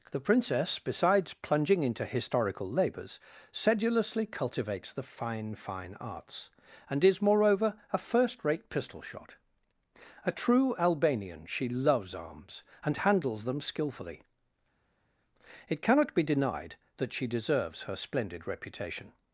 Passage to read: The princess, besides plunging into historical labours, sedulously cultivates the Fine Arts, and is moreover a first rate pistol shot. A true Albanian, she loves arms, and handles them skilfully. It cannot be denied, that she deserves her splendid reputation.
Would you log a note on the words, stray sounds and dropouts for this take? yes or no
yes